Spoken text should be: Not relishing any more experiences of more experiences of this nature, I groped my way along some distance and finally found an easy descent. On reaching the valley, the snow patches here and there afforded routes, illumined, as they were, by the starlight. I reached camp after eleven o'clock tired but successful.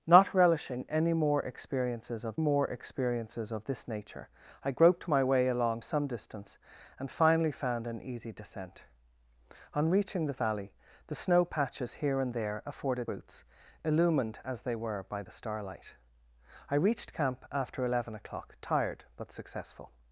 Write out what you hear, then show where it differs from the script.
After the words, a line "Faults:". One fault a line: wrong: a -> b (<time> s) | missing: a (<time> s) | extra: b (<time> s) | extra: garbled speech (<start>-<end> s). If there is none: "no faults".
Not relishing any more experiences of more experiences of this nature, I groped my way along some distance and finally found an easy descent. On reaching the valley, the snow patches here and there afforded routes, illumined, as they were, by the starlight. I reached camp after eleven o'clock tired but successful.
Faults:
no faults